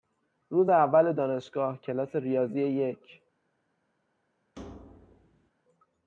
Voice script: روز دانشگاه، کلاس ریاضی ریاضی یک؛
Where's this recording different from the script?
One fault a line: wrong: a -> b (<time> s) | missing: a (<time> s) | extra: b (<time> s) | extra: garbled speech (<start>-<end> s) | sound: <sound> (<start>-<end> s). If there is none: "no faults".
extra: اول (0.7 s)
missing: ریاضی (2.9 s)
sound: thud (4.6-5.5 s)